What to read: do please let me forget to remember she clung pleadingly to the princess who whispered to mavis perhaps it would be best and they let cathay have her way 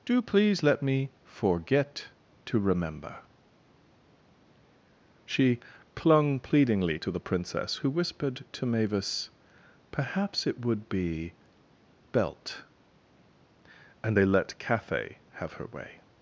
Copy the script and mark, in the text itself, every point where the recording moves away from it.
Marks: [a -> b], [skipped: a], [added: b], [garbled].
do please let me forget to remember she clung pleadingly to the princess who whispered to mavis perhaps it would be [best -> belt] and they let cathay have her way